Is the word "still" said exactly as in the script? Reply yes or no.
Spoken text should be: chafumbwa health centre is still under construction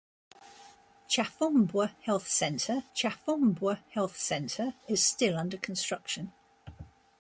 yes